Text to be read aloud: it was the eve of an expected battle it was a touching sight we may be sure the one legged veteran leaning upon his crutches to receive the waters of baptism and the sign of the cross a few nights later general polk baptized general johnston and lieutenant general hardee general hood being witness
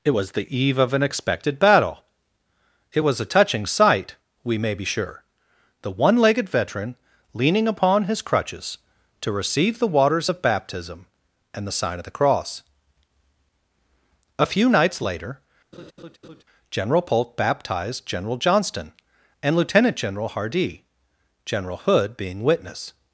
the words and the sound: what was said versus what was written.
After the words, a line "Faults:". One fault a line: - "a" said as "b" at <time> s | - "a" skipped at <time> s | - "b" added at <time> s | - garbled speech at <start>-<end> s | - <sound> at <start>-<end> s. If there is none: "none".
it was the eve of an expected battle it was a touching sight we may be sure the one legged veteran leaning upon his crutches to receive the waters of baptism and the sign of the cross a few nights later general polk baptized general johnston and lieutenant general hardee general hood being witness
Faults:
- laugh at 15.7-16.4 s